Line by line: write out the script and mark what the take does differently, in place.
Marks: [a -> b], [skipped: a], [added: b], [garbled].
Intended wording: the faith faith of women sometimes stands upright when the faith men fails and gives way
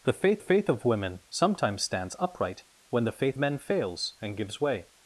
the faith faith of women sometimes stands upright when the faith men fails and gives way